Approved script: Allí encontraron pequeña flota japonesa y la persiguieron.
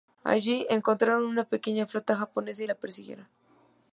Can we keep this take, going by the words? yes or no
no